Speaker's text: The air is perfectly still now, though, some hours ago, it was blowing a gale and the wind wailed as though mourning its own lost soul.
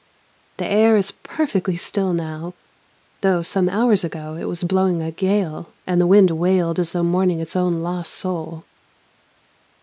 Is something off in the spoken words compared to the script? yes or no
no